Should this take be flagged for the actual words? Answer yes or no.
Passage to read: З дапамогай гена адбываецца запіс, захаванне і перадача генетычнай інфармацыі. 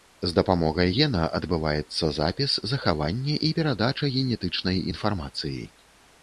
no